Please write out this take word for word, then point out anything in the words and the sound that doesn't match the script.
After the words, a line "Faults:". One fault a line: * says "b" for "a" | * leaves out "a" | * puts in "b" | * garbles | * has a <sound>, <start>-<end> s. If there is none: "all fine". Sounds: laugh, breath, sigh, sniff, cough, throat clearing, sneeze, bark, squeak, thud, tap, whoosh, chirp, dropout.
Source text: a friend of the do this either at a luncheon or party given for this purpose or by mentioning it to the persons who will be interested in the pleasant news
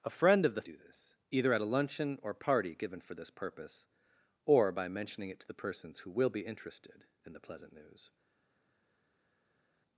a friend of the do this either at a luncheon or party given for this purpose or by mentioning it to the persons who will be interested in the pleasant news
Faults:
all fine